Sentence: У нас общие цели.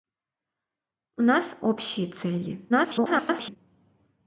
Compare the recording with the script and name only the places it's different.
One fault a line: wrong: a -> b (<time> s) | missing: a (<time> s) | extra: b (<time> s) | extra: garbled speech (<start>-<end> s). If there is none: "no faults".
extra: garbled speech (2.7-3.6 s)